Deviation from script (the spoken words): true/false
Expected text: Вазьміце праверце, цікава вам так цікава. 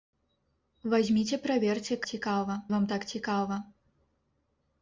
false